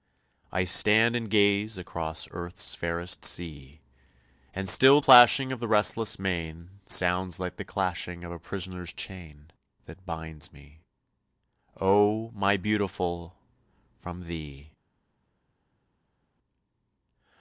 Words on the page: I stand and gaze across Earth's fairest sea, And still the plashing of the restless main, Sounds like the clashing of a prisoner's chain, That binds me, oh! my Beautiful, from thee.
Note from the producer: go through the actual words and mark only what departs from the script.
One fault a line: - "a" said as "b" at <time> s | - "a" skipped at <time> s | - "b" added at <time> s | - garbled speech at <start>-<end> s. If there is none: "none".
- "the" skipped at 5.0 s